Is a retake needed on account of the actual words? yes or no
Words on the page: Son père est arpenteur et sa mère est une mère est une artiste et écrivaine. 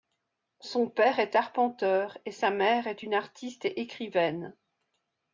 yes